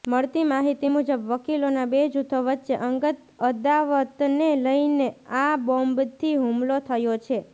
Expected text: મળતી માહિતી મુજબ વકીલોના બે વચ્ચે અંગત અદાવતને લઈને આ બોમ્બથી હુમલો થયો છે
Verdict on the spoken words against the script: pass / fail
fail